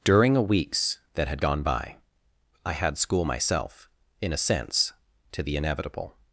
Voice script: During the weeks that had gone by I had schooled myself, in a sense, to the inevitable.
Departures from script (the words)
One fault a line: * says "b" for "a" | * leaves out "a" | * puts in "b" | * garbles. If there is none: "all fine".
* says "a" for "the"
* says "school" for "schooled"